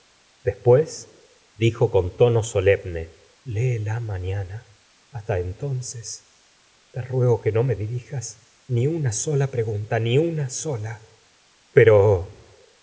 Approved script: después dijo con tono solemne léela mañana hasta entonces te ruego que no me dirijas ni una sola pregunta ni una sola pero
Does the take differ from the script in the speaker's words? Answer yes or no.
no